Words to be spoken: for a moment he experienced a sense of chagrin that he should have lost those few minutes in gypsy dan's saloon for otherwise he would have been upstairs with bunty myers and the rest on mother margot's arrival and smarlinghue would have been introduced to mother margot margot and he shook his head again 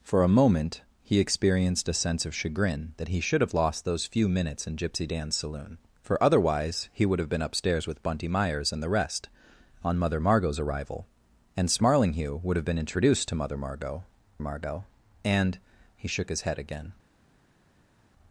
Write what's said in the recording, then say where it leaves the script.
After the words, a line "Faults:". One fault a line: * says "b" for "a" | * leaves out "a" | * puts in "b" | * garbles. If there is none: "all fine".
for a moment he experienced a sense of chagrin that he should have lost those few minutes in gypsy dan's saloon for otherwise he would have been upstairs with bunty myers and the rest on mother margot's arrival and smarlinghue would have been introduced to mother margot margot and he shook his head again
Faults:
all fine